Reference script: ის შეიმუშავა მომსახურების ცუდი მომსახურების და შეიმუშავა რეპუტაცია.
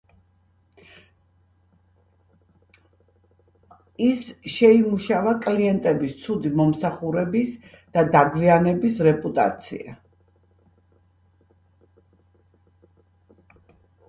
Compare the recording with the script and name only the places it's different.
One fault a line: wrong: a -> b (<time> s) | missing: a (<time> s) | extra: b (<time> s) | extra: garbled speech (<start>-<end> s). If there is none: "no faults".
wrong: მომსახურების -> კლიენტების (5.5 s)
wrong: შეიმუშავა -> დაგვიანების (8.2 s)